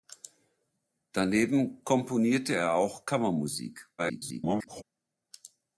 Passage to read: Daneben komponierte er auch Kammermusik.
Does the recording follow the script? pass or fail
fail